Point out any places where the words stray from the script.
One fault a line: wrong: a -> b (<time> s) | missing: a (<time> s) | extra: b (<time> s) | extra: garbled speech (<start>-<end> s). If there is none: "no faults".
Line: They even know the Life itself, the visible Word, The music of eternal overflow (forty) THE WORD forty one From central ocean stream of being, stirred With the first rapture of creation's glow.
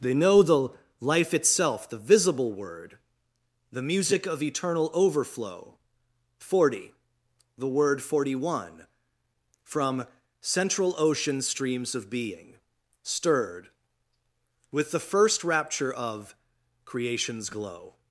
missing: even (0.1 s)
wrong: stream -> streams (11.4 s)